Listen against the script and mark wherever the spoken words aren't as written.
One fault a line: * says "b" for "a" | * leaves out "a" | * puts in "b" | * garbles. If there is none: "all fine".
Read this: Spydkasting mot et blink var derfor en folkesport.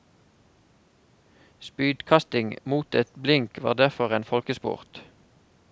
all fine